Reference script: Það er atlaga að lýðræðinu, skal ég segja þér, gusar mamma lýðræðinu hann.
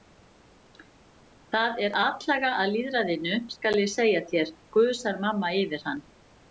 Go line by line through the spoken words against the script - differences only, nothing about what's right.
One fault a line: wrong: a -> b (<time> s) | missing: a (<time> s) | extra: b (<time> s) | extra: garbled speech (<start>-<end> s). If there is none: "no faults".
wrong: lýðræðinu -> yfir (5.6 s)